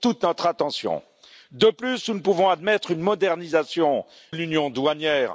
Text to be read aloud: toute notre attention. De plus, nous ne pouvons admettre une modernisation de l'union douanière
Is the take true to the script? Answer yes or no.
no